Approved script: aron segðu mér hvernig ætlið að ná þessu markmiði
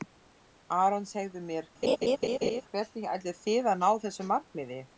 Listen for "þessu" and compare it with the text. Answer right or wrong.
right